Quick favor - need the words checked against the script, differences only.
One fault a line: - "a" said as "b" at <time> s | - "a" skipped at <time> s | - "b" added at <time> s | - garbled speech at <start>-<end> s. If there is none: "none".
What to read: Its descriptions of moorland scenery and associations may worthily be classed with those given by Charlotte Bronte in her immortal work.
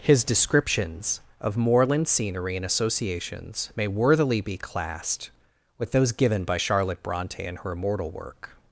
- "Its" said as "His" at 0.0 s